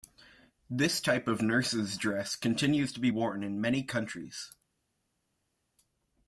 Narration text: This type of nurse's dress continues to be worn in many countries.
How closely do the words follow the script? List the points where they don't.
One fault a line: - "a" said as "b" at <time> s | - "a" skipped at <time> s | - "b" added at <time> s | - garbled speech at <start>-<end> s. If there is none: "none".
none